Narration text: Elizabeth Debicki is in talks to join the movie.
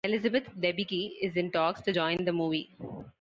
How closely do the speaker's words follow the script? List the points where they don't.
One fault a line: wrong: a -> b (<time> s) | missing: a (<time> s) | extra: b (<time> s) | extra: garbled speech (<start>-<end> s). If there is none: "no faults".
no faults